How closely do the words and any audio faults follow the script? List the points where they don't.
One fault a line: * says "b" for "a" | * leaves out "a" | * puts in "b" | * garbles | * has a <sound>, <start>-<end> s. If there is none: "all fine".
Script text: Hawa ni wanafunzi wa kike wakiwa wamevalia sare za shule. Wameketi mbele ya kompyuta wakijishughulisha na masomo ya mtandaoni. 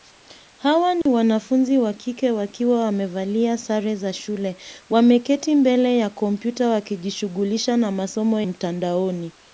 * has a dropout, 1.0-1.1 s
* leaves out "ya"